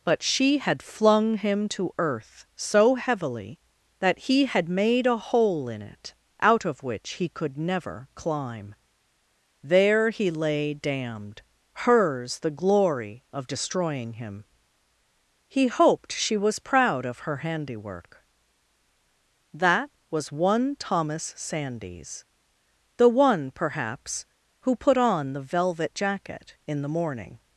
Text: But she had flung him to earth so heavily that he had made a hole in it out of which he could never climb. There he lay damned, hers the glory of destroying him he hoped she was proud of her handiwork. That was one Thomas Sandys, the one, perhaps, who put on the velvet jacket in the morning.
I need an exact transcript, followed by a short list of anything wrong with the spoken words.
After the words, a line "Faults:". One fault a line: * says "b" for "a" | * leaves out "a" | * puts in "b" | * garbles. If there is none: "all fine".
But she had flung him to earth so heavily that he had made a hole in it out of which he could never climb. There he lay damned, hers the glory of destroying him he hoped she was proud of her handiwork. That was one Thomas Sandys, the one, perhaps, who put on the velvet jacket in the morning.
Faults:
all fine